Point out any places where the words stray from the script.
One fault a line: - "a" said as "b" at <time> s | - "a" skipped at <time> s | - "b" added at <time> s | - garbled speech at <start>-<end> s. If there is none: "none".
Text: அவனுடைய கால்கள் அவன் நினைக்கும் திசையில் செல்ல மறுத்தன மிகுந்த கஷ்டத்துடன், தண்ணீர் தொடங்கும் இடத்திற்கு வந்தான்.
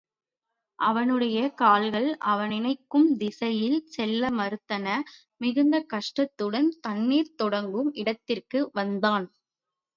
none